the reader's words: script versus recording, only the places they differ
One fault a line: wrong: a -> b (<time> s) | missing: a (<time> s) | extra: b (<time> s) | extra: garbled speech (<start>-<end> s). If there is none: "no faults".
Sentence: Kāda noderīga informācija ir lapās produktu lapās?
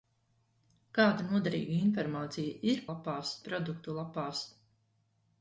no faults